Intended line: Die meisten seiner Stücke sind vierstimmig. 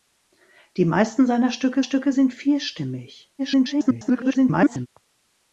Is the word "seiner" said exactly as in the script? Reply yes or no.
yes